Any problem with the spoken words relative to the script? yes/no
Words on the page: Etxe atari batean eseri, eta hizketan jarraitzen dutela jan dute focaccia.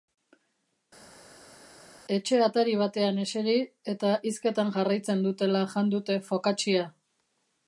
no